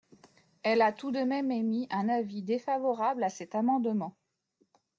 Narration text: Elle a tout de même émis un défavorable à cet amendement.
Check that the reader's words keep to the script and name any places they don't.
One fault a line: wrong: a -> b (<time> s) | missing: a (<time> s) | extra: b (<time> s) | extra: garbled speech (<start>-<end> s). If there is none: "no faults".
extra: avis (2.1 s)